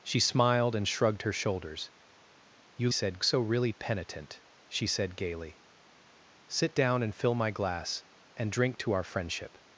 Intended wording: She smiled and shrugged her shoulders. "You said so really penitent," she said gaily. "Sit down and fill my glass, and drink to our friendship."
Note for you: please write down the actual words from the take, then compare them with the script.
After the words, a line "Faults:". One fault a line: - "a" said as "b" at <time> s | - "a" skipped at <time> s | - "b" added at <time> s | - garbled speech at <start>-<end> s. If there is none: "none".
She smiled and shrugged her shoulders. "You said so really penitent," she said gaily. "Sit down and fill my glass, and drink to our friendship."
Faults:
none